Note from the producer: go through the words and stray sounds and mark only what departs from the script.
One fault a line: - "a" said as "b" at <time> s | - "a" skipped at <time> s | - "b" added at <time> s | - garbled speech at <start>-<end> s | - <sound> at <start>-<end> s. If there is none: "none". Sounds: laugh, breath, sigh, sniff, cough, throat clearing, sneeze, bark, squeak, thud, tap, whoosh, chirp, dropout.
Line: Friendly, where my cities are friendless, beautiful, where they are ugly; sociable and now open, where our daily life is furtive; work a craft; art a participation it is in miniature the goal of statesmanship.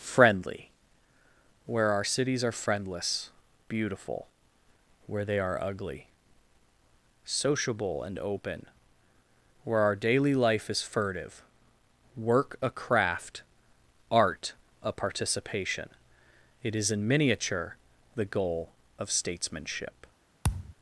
- "my" said as "our" at 1.9 s
- "now" skipped at 8.2 s
- thud at 20.4-20.8 s